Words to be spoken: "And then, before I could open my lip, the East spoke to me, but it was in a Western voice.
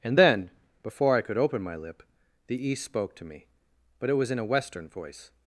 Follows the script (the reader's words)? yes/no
yes